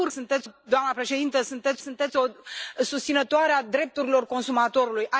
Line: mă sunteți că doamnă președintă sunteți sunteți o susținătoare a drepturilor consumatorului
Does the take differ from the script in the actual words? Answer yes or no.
no